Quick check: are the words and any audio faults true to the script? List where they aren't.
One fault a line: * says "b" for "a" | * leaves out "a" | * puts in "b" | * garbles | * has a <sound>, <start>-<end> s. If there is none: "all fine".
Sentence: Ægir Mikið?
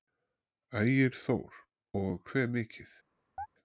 * puts in "Þór Og hve"
* has a chirp, 3.4-3.5 s